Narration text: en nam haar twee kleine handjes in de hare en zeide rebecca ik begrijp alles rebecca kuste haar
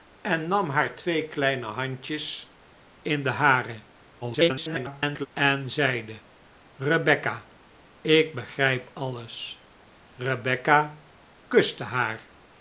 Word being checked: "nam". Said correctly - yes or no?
yes